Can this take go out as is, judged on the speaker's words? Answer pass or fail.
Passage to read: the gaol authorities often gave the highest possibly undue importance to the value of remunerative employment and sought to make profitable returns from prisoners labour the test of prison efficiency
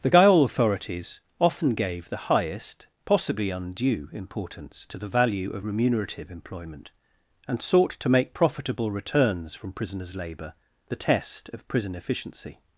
pass